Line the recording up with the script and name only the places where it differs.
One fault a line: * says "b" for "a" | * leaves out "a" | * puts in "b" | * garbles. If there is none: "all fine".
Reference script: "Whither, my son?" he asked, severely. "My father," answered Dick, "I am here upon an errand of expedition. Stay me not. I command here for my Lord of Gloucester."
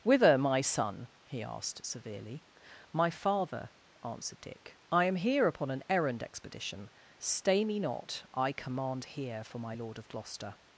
* leaves out "of"